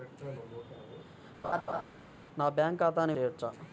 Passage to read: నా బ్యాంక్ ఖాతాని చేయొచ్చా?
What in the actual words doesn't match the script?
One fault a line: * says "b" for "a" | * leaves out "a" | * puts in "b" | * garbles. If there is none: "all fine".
all fine